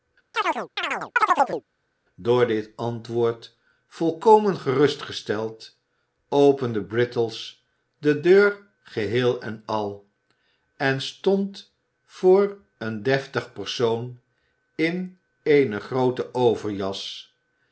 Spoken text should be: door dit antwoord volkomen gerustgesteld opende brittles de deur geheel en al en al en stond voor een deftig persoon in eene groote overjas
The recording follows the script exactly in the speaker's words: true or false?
false